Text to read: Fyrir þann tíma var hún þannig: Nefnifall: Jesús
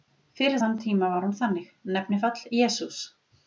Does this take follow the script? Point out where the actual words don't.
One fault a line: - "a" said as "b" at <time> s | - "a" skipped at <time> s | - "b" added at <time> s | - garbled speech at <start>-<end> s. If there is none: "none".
none